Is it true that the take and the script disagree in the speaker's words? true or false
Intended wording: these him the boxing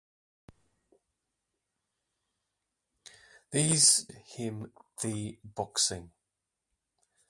false